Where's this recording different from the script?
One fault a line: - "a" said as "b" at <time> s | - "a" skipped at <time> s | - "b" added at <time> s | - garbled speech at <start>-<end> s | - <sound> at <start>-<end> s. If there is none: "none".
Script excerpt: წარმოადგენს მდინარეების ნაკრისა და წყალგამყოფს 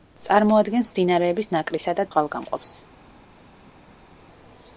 none